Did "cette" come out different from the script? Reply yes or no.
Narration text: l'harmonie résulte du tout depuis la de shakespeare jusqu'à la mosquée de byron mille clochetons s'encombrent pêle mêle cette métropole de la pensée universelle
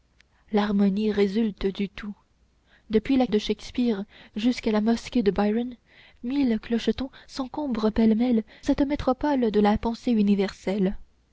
no